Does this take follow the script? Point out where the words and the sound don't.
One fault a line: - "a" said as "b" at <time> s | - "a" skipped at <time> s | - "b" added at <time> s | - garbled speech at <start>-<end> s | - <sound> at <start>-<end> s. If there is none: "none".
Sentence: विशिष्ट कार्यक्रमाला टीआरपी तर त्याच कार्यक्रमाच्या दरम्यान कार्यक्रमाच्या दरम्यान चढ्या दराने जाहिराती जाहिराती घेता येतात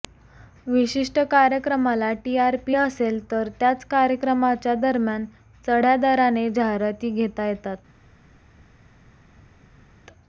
- "असेल" added at 2.7 s
- "कार्यक्रमाच्या दरम्यान" skipped at 5.2 s
- "जाहिराती" skipped at 7.1 s